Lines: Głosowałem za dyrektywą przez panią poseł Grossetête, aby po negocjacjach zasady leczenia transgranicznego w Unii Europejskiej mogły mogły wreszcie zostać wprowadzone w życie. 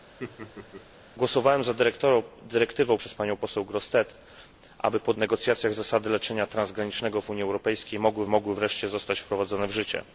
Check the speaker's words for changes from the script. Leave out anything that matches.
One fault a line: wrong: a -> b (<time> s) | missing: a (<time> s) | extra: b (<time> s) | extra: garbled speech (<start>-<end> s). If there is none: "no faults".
no faults